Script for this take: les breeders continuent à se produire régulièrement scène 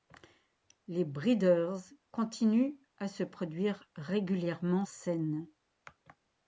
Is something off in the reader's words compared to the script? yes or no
no